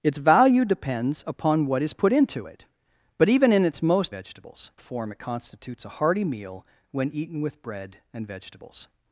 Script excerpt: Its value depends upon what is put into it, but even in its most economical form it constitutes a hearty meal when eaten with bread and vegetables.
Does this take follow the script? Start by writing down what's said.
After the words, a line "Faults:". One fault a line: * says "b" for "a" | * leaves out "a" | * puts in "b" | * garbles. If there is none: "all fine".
Its value depends upon what is put into it, but even in its most vegetables form it constitutes a hearty meal when eaten with bread and vegetables.
Faults:
* says "vegetables" for "economical"